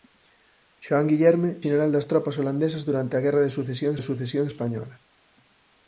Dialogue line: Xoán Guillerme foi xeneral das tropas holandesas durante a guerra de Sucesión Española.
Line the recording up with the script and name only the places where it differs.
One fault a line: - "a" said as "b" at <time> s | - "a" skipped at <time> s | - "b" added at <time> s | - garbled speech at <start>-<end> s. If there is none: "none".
- "foi" skipped at 1.5 s
- "de Sucesión" added at 3.9 s